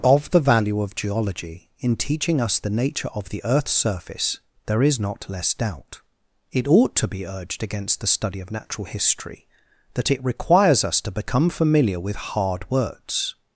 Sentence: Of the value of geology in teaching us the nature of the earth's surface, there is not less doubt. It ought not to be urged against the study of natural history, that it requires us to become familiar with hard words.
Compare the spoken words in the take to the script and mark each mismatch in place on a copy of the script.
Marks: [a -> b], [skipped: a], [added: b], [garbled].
Of the value of geology in teaching us the nature of the earth's surface, there is not less doubt. It ought [skipped: not] to be urged against the study of natural history, that it requires us to become familiar with hard words.